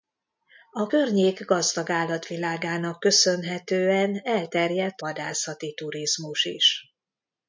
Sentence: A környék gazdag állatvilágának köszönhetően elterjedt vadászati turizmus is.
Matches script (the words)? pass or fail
pass